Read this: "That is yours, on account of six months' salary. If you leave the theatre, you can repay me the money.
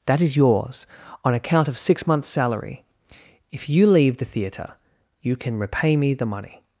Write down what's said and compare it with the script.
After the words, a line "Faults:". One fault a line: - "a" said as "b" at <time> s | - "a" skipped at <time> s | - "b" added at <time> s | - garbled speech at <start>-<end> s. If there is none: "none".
"That is yours, on account of six months' salary. If you leave the theatre, you can repay me the money.
Faults:
none